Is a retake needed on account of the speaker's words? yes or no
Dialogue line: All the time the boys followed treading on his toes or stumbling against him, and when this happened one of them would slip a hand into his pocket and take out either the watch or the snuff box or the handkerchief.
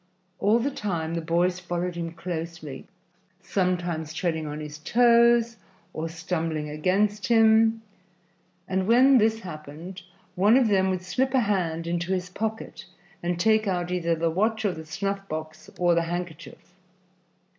yes